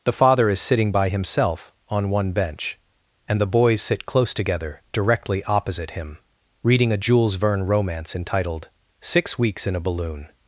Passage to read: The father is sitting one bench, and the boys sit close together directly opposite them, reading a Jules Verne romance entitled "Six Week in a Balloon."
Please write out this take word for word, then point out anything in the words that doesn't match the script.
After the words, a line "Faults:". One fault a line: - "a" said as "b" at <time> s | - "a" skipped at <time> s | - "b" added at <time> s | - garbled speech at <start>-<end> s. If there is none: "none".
The father is sitting by himself on one bench, and the boys sit close together directly opposite him, reading a Jules Verne romance entitled "Six Weeks in a Balloon."
Faults:
- "by himself on" added at 0.9 s
- "them" said as "him" at 5.9 s
- "Week" said as "Weeks" at 9.4 s